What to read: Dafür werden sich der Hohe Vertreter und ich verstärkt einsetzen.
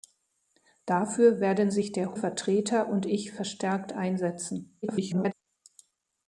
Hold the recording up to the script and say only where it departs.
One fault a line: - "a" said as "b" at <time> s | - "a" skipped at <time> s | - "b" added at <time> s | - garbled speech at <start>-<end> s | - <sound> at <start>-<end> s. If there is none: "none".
- "Hohe" skipped at 2.1 s
- garbled speech at 4.8-5.3 s